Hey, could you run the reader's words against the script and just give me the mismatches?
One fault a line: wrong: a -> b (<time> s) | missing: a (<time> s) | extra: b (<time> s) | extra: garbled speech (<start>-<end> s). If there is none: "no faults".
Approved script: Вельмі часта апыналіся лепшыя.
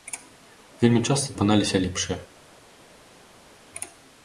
no faults